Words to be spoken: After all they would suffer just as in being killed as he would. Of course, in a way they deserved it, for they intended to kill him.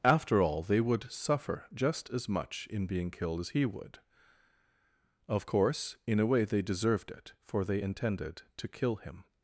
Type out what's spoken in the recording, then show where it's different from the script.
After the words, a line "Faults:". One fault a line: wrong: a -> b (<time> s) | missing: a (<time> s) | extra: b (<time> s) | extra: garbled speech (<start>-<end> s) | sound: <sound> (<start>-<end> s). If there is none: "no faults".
After all they would suffer just as much in being killed as he would. Of course, in a way they deserved it, for they intended to kill him.
Faults:
extra: much (2.3 s)